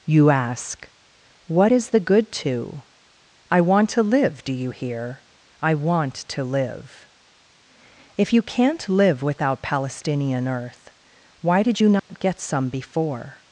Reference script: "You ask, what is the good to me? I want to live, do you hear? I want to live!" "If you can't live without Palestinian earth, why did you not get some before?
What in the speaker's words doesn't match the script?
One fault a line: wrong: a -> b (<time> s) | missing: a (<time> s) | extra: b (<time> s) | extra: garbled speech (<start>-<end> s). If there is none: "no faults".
missing: me (2.8 s)